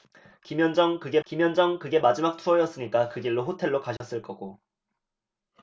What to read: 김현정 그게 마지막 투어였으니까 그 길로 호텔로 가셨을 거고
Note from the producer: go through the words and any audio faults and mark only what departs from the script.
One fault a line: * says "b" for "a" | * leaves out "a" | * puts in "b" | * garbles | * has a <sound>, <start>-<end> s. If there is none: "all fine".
* puts in "김현정 그게"
* has a dropout, 4.0-4.0 s